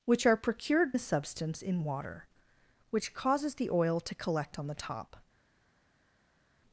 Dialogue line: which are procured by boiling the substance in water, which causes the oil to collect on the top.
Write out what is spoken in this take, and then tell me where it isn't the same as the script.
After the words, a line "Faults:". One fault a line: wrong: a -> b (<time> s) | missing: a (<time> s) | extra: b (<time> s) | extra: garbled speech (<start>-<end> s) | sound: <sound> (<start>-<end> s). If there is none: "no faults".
which are procured the substance in water, which causes the oil to collect on the top.
Faults:
missing: by boiling (0.9 s)